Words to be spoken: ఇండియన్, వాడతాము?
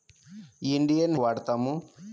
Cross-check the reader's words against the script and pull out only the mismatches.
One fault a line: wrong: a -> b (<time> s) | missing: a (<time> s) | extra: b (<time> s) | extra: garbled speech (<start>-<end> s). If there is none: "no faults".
no faults